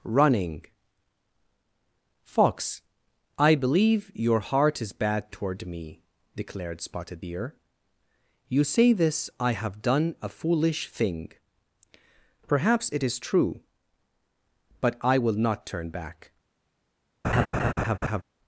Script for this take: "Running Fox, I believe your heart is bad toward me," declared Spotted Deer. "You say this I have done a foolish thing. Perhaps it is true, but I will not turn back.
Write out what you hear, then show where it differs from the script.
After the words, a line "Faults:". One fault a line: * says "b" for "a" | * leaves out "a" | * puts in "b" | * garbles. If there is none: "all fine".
"Running Fox, I believe your heart is bad toward me," declared Spotted Deer. "You say this I have done a foolish thing. Perhaps it is true, but I will not turn back.
Faults:
all fine